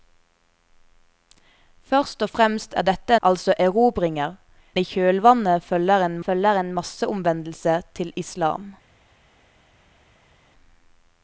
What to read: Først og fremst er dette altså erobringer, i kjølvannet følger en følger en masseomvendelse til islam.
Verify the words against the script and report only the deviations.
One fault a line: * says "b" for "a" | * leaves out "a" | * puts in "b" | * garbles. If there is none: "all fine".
all fine